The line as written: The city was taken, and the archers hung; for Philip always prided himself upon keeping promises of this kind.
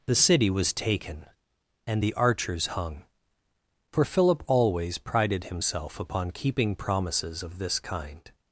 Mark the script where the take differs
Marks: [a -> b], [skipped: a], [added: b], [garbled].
The city was taken, and the archers hung; for Philip always prided himself upon keeping promises of this kind.